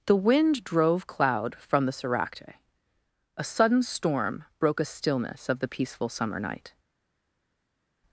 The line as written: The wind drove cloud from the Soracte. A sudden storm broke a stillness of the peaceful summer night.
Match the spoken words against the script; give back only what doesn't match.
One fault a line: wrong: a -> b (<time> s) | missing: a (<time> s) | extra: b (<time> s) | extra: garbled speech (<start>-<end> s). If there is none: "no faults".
no faults